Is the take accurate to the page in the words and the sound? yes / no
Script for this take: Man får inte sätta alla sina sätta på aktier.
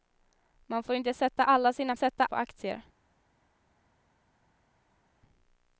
yes